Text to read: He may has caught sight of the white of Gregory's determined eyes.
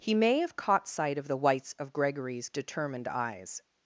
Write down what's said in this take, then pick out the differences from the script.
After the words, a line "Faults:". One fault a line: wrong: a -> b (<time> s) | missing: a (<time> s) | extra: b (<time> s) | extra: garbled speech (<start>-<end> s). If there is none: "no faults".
He may have caught sight of the whites of Gregory's determined eyes.
Faults:
wrong: has -> have (0.4 s)
wrong: white -> whites (1.4 s)